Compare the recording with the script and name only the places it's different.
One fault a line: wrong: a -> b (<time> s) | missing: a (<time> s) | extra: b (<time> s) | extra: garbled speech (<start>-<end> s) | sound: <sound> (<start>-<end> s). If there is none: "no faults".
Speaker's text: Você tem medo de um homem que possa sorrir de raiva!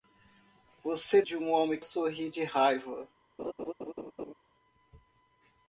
missing: tem medo (1.2 s)
missing: que possa (1.8 s)
sound: laugh (3.4-4.3 s)